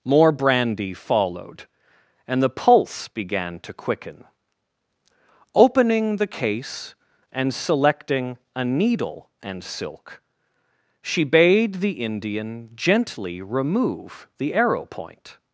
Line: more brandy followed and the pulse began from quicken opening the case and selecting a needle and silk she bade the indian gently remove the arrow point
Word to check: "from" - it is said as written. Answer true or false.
false